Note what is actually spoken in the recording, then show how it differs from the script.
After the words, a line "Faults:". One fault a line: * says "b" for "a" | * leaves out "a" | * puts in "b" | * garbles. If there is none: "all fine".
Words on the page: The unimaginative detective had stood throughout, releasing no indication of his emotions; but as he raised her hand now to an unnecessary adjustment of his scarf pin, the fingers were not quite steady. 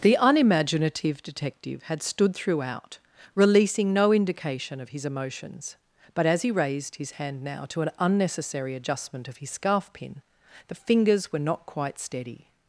The unimaginative detective had stood throughout, releasing no indication of his emotions; but as he raised his hand now to an unnecessary adjustment of his scarf pin, the fingers were not quite steady.
Faults:
* says "his" for "her"